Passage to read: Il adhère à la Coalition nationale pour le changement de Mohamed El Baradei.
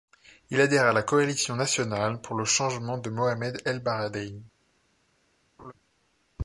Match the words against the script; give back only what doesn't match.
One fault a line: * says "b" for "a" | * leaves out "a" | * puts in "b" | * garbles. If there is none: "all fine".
all fine